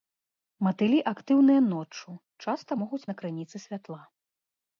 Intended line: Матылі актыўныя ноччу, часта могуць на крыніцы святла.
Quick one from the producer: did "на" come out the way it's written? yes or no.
yes